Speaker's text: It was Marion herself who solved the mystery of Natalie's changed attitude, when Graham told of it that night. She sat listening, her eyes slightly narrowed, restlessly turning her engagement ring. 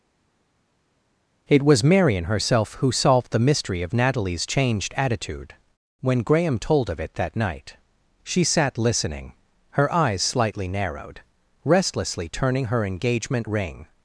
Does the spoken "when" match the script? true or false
true